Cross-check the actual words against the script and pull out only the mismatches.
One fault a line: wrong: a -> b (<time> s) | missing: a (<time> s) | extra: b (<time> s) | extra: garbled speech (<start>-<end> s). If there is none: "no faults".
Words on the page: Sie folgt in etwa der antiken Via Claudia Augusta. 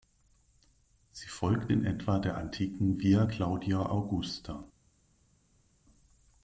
no faults